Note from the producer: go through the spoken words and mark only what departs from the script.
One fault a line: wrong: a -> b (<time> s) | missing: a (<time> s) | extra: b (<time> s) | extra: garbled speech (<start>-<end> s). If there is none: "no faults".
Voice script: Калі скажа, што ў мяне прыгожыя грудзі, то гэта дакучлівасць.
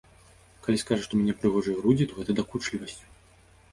no faults